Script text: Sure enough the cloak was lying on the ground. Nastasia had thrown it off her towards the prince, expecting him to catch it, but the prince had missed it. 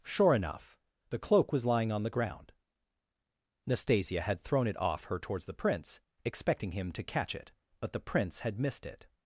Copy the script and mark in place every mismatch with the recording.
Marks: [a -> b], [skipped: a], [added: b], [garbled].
Sure enough the cloak was lying on the ground. Nastasia had thrown it off her towards the prince, expecting him to catch it, but the prince had missed it.